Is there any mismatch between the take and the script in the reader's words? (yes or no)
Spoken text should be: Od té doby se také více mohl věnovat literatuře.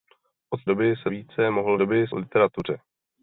yes